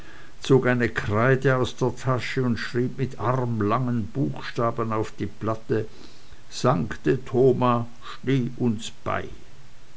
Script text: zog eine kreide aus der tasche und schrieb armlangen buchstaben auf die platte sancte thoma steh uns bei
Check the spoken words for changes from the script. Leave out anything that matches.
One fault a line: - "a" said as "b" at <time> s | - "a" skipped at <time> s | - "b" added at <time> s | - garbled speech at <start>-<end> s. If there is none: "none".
- "mit" added at 3.0 s